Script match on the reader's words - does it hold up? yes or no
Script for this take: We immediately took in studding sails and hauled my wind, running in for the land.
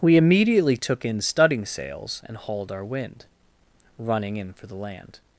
no